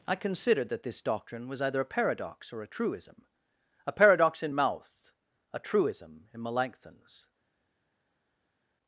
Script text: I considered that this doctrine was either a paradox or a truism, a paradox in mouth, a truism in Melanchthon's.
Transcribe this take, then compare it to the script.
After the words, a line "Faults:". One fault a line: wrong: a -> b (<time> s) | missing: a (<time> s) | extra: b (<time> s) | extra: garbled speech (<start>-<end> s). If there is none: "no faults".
I considered that this doctrine was either a paradox or a truism, a paradox in mouth, a truism in Melanchthon's.
Faults:
no faults